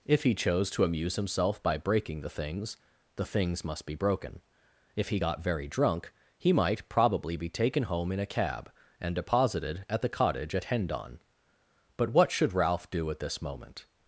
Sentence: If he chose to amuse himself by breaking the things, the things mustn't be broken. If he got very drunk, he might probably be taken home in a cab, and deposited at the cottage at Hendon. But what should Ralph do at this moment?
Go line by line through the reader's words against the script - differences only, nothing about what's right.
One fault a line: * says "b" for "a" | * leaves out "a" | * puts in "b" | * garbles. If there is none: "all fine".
* says "must" for "mustn't"